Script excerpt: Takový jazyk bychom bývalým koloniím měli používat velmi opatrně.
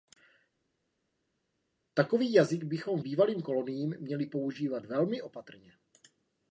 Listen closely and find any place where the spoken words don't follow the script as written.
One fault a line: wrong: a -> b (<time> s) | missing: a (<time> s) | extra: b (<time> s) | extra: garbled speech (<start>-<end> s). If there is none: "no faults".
no faults